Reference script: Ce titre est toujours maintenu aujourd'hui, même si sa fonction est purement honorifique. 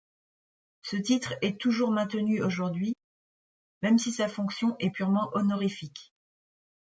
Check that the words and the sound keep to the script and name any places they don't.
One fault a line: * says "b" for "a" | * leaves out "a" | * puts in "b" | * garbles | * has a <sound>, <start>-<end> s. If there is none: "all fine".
all fine